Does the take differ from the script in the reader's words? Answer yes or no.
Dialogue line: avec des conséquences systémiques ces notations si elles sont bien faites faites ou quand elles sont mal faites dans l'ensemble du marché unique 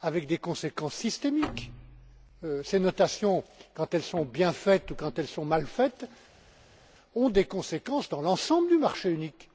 yes